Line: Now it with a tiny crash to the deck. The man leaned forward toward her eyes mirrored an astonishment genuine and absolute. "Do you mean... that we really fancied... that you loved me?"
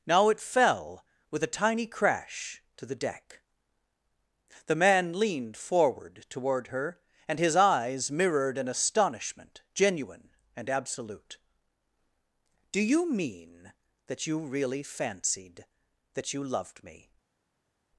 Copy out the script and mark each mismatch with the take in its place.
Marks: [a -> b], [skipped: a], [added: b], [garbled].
Now it [added: fell] with a tiny crash to the deck. The man leaned forward toward her [added: and his] eyes mirrored an astonishment genuine and absolute. "Do you mean... that [we -> you] really fancied... that you loved me?"